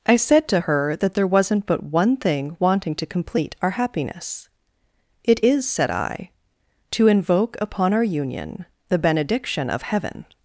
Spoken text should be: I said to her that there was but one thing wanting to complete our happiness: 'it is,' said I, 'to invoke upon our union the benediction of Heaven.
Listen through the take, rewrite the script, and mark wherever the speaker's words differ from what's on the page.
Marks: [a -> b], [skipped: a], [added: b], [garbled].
I said to her that there [was -> wasn't] but one thing wanting to complete our happiness: 'it is,' said I, 'to invoke upon our union the benediction of Heaven.